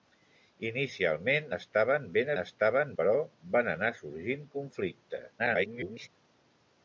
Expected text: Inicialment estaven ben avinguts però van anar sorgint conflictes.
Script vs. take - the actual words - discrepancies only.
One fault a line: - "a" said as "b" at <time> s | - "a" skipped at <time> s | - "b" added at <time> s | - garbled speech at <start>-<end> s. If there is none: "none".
- "avinguts" said as "estaven" at 2.4 s
- garbled speech at 5.4-6.1 s